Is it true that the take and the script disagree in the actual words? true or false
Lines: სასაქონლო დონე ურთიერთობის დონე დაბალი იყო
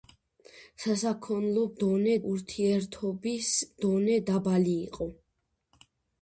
false